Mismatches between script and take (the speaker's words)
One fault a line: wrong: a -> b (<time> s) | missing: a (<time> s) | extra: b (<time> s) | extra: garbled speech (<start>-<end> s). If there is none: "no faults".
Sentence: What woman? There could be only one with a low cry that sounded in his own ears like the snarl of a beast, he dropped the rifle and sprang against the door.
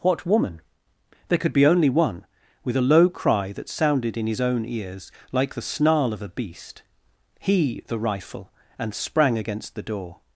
missing: dropped (7.8 s)